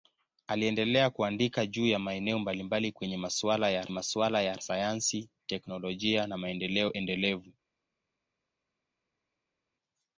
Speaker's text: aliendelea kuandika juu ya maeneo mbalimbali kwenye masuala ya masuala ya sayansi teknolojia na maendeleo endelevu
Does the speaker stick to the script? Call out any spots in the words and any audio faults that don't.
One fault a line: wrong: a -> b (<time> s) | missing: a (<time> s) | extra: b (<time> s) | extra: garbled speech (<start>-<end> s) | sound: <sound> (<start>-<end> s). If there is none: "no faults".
no faults